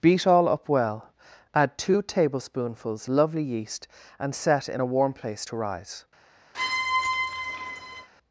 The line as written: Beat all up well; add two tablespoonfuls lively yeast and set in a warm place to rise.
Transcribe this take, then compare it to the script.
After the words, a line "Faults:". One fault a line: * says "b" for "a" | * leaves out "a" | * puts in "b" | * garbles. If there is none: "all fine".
Beat all up well; add two tablespoonfuls lovely yeast and set in a warm place to rise.
Faults:
* says "lovely" for "lively"